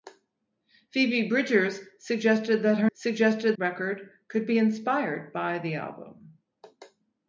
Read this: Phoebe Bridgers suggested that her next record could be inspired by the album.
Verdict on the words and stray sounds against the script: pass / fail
fail